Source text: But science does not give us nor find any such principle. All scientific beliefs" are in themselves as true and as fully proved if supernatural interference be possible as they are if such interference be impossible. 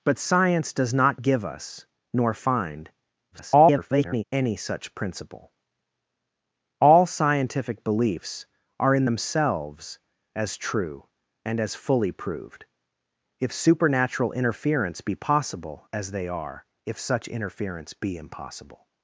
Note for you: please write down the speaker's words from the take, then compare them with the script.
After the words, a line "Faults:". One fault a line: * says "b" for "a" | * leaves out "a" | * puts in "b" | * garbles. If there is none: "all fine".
But science does not give us nor find [garbled] any such principle. All scientific beliefs" are in themselves as true and as fully proved if supernatural interference be possible as they are if such interference be impossible.
Faults:
* garbles